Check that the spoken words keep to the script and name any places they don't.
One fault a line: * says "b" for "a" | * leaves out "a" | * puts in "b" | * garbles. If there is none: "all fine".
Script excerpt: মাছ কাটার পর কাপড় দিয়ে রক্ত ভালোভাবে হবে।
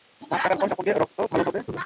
all fine